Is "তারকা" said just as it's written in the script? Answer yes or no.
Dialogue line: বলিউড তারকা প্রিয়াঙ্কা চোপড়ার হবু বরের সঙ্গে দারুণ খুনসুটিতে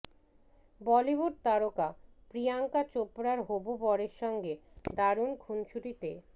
yes